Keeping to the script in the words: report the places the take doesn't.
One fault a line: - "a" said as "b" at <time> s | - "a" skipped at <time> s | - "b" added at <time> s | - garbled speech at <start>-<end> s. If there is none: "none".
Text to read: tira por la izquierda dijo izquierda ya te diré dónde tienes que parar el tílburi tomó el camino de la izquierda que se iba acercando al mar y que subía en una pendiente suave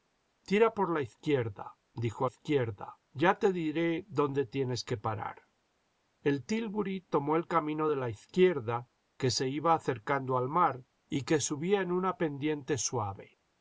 none